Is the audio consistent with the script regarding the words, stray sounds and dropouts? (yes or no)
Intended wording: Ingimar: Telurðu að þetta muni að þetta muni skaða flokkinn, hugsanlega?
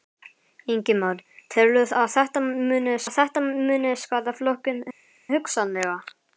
yes